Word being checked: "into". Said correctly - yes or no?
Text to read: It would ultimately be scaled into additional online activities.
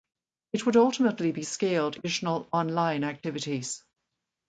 no